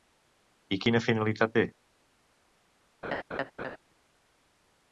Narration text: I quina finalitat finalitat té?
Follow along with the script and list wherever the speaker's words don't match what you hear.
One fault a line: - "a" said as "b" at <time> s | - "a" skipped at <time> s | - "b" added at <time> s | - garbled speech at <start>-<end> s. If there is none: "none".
- "finalitat" skipped at 1.6 s